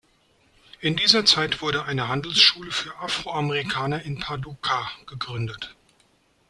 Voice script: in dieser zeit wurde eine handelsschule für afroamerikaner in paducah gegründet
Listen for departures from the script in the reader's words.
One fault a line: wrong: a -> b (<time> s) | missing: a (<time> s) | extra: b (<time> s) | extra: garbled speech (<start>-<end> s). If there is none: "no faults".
no faults